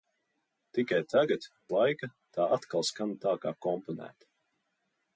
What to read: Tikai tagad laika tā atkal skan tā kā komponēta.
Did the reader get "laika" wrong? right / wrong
right